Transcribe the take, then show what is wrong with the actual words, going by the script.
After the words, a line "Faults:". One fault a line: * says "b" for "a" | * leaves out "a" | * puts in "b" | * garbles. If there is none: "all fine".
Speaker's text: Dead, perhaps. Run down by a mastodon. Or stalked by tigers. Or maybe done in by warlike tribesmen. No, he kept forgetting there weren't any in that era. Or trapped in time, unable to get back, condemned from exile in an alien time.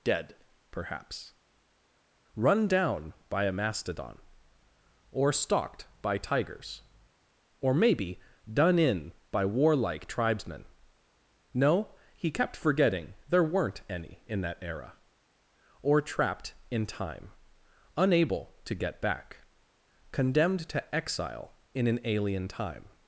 Dead, perhaps. Run down by a mastodon. Or stalked by tigers. Or maybe done in by warlike tribesmen. No, he kept forgetting there weren't any in that era. Or trapped in time, unable to get back, condemned to exile in an alien time.
Faults:
* says "to" for "from"